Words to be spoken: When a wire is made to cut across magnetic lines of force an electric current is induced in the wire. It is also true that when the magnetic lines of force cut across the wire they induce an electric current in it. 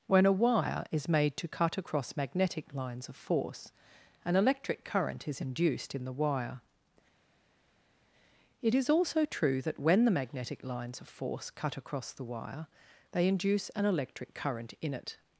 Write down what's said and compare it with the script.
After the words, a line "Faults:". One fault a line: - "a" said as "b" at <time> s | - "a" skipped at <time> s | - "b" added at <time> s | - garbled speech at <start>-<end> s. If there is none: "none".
When a wire is made to cut across magnetic lines of force an electric current is induced in the wire. It is also true that when the magnetic lines of force cut across the wire they induce an electric current in it.
Faults:
none